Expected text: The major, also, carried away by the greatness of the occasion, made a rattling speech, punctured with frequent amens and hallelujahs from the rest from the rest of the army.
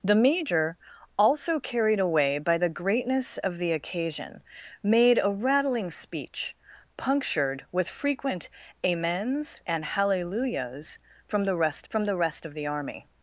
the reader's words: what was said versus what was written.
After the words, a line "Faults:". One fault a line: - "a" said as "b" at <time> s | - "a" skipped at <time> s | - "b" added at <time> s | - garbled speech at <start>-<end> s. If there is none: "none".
The major, also, carried away by the greatness of the occasion, made a rattling speech, punctured with frequent amens and hallelujahs from the rest from the rest of the army.
Faults:
none